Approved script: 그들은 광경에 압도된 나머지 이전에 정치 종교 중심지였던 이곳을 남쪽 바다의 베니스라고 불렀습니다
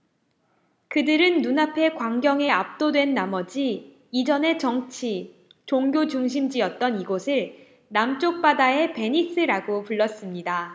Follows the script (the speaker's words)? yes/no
no